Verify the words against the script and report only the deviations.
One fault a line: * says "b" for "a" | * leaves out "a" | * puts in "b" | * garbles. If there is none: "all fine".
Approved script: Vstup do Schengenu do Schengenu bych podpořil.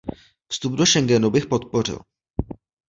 * leaves out "do Schengenu"